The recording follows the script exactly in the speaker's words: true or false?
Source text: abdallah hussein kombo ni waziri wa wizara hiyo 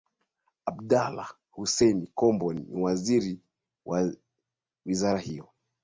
true